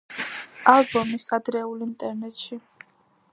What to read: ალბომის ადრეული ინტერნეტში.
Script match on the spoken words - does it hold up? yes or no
yes